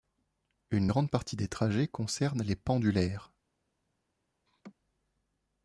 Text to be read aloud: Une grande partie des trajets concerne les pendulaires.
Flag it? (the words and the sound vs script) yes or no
yes